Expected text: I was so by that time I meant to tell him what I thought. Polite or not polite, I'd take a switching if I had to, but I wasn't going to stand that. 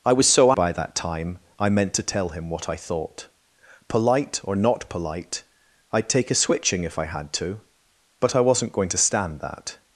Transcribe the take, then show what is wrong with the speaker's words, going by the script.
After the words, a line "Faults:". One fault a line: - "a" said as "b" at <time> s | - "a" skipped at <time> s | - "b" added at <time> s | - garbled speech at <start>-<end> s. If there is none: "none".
I was so by that time I meant to tell him what I thought. Polite or not polite, I'd take a switching if I had to, but I wasn't going to stand that.
Faults:
none